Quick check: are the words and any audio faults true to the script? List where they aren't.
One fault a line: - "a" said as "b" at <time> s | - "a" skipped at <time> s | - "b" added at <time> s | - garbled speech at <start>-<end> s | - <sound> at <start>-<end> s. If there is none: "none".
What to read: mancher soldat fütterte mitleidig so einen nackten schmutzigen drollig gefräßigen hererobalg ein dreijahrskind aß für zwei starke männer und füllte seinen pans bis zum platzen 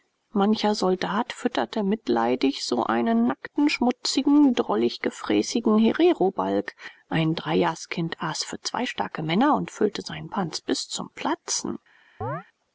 - chirp at 12.2-12.4 s